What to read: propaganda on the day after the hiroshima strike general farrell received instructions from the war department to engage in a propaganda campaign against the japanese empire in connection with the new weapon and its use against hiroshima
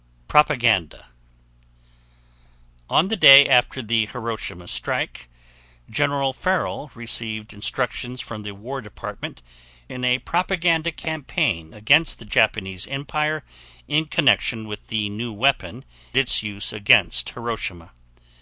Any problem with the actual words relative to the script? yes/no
yes